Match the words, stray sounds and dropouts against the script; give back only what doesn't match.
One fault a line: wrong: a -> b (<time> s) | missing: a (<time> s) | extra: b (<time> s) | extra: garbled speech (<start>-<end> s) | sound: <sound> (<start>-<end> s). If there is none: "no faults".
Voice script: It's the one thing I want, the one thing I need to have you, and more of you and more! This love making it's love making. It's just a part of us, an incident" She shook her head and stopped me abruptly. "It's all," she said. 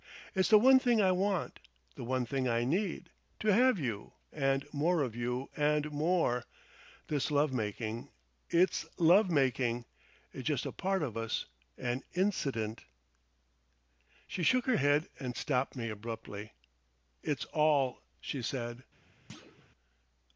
sound: thud (19.3-19.7 s)